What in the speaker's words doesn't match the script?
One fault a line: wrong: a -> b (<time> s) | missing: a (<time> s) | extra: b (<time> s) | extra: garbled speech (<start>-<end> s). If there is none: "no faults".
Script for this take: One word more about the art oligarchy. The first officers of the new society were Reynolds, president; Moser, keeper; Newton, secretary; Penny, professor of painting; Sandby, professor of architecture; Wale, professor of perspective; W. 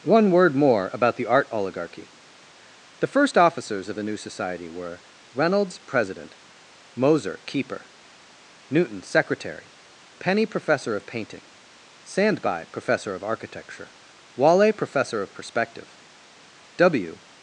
no faults